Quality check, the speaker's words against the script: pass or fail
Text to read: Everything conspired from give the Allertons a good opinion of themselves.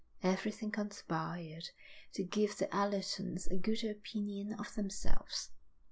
fail